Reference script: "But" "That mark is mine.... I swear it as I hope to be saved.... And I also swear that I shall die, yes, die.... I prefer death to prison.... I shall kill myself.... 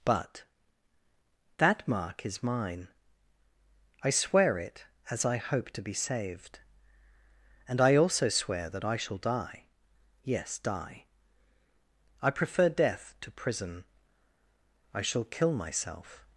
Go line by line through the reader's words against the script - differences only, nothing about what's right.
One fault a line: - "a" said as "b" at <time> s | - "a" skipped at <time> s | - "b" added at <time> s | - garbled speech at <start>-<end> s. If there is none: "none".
none